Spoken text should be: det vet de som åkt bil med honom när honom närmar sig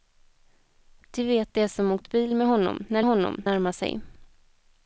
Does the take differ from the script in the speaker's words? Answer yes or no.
no